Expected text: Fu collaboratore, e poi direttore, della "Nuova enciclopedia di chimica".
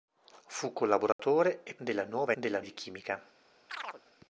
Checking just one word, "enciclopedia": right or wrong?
wrong